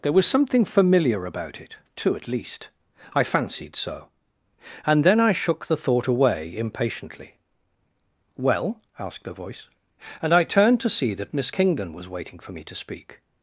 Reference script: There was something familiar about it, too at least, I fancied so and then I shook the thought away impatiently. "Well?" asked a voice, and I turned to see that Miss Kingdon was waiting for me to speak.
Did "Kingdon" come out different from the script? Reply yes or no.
no